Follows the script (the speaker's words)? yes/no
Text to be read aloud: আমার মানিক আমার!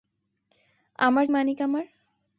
yes